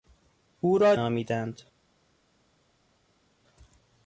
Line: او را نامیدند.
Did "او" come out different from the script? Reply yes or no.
no